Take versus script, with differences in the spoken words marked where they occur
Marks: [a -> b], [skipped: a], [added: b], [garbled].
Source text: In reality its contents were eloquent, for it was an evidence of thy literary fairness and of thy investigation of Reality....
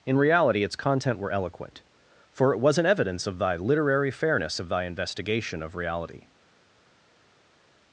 In reality its [contents -> content] were eloquent, for it was an evidence of thy literary fairness [skipped: and] of thy investigation of Reality....